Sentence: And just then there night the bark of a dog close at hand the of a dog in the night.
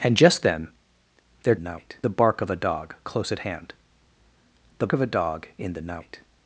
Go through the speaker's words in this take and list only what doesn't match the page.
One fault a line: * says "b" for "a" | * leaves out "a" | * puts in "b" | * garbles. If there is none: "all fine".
all fine